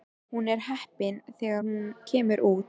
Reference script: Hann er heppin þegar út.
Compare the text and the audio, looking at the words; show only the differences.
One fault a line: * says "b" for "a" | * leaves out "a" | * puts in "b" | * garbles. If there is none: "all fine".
* says "Hún" for "Hann"
* puts in "hún kemur"